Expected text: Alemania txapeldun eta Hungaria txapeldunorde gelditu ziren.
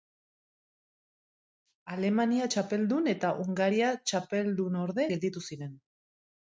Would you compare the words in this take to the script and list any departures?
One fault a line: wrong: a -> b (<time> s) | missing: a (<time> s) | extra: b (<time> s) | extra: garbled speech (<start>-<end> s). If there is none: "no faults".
no faults